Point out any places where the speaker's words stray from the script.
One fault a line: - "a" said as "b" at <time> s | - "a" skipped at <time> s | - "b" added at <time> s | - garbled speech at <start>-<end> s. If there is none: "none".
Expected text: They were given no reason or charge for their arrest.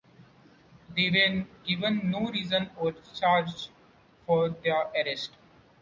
none